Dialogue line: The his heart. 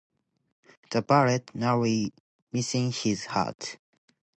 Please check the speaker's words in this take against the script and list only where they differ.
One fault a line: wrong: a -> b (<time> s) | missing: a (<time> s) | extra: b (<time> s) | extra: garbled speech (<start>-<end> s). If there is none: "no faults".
extra: bullet narrowly missing (1.0 s)